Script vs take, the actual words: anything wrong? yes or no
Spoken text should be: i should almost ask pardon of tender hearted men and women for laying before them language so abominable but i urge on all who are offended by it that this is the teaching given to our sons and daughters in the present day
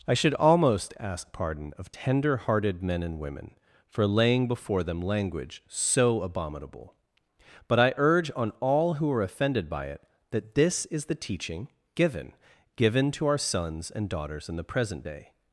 yes